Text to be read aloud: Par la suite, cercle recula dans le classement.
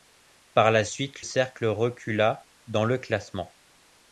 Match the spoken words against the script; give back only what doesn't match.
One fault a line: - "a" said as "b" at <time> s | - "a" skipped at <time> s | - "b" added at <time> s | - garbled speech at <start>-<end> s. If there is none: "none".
none